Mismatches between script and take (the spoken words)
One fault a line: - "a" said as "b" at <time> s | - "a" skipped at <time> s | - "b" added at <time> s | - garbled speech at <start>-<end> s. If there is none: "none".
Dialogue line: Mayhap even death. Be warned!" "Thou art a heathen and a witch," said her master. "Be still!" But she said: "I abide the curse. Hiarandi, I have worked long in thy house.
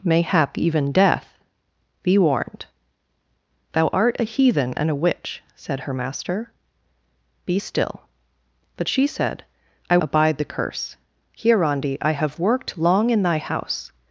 none